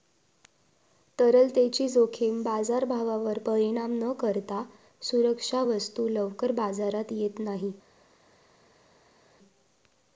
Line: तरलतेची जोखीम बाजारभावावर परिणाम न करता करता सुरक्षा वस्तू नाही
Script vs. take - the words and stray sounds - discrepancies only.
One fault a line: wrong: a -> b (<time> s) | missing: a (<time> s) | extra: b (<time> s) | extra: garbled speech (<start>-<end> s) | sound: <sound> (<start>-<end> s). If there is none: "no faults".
missing: करता (4.6 s)
extra: लवकर बाजारात येत (6.1 s)